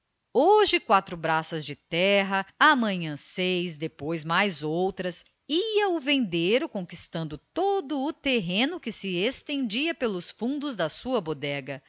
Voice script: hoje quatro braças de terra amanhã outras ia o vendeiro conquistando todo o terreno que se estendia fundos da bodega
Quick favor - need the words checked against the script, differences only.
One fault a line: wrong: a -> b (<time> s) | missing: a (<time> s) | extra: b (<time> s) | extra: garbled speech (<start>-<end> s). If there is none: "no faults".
extra: seis depois mais (3.2 s)
extra: pelos (9.9 s)
extra: sua (10.9 s)